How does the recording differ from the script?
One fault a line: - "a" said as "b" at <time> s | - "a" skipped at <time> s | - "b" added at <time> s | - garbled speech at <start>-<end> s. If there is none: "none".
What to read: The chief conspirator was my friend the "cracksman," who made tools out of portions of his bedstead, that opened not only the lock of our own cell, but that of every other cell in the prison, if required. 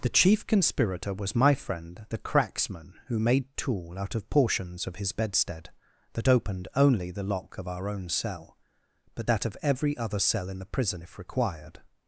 - "tools" said as "tool" at 3.6 s
- "not" skipped at 6.7 s